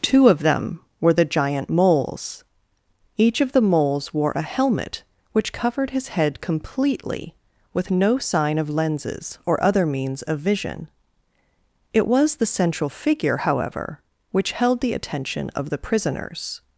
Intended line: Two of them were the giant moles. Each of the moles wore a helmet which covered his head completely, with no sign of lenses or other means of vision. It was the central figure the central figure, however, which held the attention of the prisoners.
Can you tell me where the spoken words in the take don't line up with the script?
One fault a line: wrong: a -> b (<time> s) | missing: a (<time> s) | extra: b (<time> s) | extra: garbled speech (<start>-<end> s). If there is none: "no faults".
missing: the central figure (13.4 s)